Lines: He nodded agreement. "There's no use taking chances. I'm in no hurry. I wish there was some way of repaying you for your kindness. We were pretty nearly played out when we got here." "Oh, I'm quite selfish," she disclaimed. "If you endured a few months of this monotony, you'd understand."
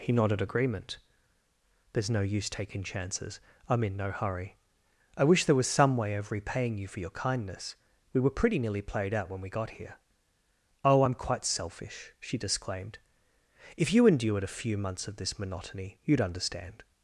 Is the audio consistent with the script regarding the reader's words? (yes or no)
yes